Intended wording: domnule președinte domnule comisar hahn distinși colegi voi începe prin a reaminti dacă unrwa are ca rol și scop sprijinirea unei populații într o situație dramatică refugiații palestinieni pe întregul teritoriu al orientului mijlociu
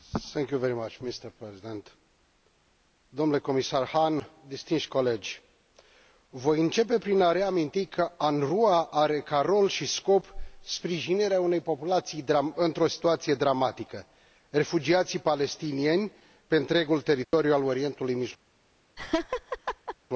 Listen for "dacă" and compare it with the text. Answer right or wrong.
wrong